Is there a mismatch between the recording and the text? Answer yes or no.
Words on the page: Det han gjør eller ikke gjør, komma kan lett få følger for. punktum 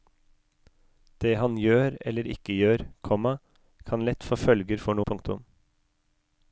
no